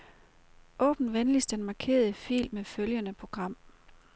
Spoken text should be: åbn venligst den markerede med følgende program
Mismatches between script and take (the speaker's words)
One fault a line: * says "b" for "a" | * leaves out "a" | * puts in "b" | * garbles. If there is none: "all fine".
* puts in "fil"